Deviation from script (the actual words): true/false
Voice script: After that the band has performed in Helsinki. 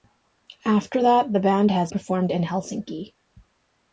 false